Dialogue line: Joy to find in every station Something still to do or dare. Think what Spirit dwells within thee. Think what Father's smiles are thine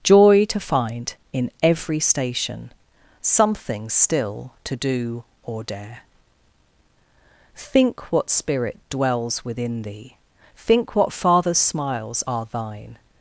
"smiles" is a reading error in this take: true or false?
false